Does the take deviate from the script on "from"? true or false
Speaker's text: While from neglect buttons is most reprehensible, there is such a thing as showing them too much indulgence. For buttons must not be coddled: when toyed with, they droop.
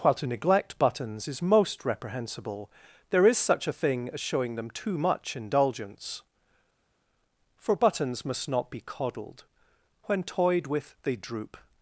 true